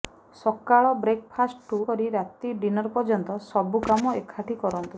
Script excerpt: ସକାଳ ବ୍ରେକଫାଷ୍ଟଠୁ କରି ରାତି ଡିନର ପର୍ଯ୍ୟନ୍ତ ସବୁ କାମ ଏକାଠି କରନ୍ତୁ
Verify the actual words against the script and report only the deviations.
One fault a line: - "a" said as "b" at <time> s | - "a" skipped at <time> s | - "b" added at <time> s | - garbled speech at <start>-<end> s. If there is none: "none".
none